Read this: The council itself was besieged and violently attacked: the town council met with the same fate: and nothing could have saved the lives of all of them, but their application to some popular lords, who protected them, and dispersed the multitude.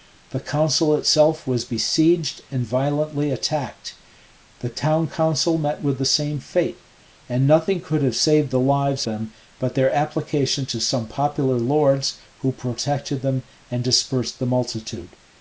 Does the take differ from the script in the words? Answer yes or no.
yes